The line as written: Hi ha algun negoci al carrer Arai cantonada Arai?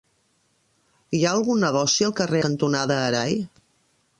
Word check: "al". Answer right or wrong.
right